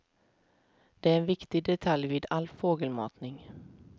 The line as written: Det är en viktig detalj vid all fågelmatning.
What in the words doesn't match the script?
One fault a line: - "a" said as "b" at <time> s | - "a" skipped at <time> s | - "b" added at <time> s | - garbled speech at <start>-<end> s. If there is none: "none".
none